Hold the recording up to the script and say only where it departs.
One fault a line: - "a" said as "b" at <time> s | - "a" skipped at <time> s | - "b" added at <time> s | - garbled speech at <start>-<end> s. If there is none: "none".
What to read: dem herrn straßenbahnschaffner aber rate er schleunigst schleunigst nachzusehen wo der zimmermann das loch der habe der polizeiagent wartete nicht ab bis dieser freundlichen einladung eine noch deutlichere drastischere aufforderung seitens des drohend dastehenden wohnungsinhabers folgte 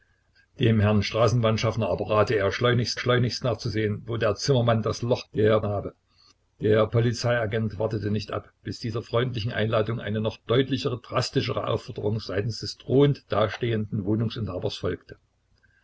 none